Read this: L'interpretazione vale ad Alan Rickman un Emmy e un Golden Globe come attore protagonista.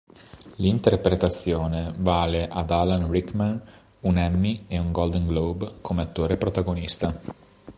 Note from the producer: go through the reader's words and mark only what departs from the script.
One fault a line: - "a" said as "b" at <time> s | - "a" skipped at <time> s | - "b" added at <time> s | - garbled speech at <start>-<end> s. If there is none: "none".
none